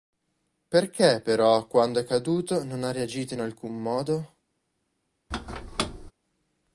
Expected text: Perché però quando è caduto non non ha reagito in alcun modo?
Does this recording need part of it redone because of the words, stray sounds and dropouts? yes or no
yes